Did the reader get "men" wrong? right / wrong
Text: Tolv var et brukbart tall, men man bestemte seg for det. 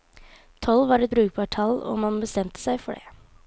wrong